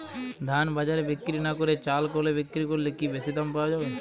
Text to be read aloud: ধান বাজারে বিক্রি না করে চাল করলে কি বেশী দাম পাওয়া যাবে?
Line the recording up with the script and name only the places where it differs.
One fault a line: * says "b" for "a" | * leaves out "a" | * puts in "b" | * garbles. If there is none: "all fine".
* puts in "কলে বিক্রি"